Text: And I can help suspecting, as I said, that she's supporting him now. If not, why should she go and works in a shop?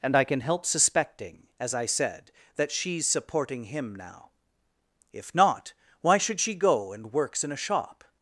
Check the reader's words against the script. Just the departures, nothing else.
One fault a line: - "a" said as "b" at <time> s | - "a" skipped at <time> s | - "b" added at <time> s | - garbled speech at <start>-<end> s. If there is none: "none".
none